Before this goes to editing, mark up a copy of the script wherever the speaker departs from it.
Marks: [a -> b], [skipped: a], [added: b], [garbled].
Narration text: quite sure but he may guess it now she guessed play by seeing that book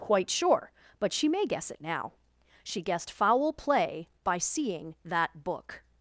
quite sure but [he -> she] may guess it now she guessed [added: foul] play by seeing that book